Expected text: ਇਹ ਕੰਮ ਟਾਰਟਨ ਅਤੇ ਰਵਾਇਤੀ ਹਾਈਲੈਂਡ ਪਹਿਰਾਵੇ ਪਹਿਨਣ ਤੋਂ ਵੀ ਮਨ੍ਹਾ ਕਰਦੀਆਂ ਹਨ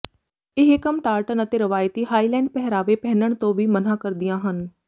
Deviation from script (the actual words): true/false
false